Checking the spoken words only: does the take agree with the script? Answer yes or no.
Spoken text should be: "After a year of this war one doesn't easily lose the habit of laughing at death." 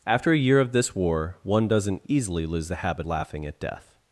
no